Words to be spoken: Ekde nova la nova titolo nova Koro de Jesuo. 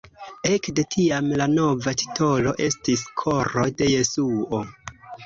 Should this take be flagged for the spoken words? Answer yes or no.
yes